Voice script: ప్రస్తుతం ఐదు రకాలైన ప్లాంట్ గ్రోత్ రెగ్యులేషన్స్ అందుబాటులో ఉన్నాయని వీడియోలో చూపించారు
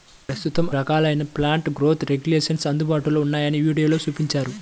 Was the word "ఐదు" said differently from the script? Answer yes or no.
yes